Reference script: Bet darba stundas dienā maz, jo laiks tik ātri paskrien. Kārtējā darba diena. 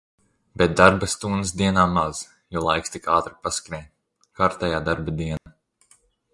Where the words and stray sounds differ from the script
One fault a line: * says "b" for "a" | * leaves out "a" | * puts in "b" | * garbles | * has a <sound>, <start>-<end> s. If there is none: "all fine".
* has a dropout, 5.4-5.5 s